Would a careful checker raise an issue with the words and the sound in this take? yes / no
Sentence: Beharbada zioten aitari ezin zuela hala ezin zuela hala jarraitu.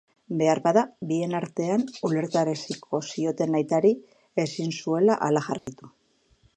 yes